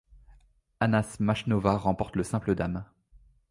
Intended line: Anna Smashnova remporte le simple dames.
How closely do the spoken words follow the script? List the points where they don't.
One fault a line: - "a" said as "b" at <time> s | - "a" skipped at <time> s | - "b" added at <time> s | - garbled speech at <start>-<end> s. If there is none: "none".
none